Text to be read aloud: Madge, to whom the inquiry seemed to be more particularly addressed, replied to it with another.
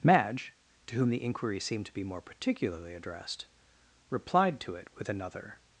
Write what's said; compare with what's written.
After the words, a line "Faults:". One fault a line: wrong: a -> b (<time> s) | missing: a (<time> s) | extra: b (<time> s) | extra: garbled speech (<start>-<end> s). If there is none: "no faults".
Madge, to whom the inquiry seemed to be more particularly addressed, replied to it with another.
Faults:
no faults